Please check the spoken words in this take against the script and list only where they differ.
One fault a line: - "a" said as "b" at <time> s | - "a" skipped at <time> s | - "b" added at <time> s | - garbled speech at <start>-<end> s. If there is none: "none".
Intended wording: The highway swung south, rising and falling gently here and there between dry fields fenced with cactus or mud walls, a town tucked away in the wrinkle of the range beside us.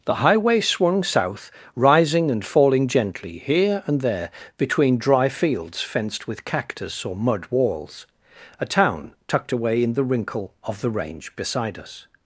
none